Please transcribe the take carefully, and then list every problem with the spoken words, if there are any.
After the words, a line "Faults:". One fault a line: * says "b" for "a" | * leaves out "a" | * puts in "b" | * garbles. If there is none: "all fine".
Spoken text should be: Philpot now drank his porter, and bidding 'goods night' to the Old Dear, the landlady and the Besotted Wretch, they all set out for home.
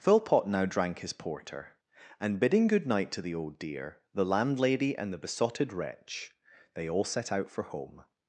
Philpot now drank his porter, and bidding 'good night' to the Old Dear, the landlady and the Besotted Wretch, they all set out for home.
Faults:
* says "good" for "goods"